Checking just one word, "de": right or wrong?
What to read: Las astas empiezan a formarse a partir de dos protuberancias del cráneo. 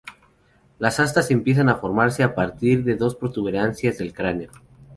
right